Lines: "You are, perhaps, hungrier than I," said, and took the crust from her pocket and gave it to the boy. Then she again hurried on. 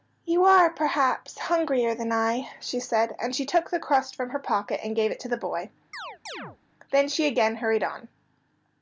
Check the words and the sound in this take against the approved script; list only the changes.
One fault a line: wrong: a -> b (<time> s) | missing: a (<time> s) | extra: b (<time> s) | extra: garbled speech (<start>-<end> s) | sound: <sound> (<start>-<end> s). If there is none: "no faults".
extra: she (2.6 s)
extra: she (3.4 s)
sound: chirp (5.9-6.6 s)